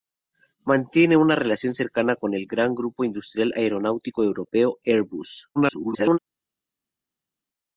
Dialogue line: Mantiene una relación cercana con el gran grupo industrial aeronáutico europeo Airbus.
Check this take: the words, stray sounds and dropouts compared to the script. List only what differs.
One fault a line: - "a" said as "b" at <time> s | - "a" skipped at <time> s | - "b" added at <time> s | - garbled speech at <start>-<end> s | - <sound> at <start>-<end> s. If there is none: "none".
- garbled speech at 5.6-6.2 s